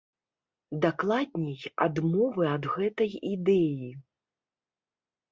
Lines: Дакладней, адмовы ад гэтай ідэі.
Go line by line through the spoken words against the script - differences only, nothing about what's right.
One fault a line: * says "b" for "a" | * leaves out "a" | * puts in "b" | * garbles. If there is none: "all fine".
all fine